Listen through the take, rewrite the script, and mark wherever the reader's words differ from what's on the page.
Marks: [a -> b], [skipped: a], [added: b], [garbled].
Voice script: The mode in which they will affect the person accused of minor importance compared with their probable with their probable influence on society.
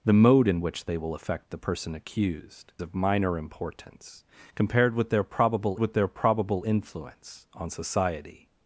The mode in which they will affect the person accused of minor importance compared with their probable with their probable influence on society.